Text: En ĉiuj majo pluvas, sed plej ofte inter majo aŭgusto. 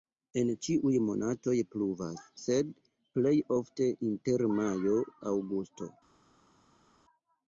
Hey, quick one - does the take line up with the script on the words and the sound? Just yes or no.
no